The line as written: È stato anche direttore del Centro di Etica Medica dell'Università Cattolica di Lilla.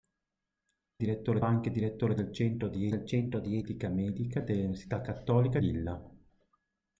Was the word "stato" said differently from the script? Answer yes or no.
yes